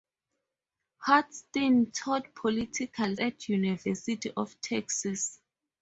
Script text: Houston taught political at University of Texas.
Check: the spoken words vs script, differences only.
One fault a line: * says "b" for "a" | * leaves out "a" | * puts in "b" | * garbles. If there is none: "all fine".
all fine